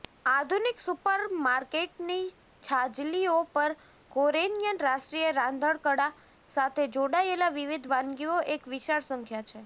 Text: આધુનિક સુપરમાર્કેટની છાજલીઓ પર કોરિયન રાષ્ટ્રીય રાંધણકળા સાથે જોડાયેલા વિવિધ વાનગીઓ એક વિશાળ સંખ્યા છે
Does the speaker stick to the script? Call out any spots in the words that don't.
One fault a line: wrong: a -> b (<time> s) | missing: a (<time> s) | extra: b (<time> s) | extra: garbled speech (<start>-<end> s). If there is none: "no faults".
no faults